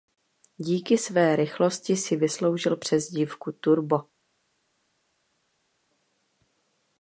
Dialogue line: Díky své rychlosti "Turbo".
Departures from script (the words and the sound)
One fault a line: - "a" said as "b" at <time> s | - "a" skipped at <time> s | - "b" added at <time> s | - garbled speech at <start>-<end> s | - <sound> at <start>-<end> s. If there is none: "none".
- "si vysloužil přezdívku" added at 2.0 s